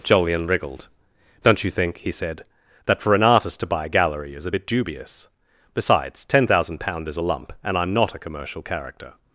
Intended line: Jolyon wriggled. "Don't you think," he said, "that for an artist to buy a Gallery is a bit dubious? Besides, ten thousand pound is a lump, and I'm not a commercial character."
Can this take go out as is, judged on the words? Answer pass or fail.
pass